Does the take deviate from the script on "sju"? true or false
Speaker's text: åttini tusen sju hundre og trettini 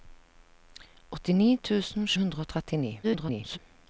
true